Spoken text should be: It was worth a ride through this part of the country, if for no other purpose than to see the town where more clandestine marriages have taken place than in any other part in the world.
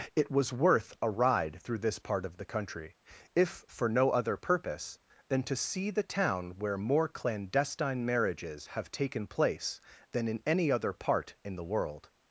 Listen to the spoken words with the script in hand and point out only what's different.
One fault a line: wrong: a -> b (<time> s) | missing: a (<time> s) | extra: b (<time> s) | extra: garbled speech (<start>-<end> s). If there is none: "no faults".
no faults